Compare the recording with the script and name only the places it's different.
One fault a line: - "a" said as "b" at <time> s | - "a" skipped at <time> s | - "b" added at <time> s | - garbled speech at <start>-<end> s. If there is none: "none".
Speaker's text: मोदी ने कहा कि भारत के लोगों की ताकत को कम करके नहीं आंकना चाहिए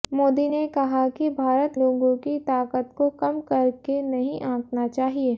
- "के" skipped at 1.7 s